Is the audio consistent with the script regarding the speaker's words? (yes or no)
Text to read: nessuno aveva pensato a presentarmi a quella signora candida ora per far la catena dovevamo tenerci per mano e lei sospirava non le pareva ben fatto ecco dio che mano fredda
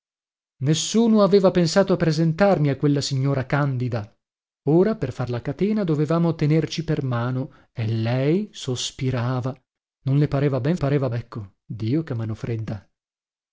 no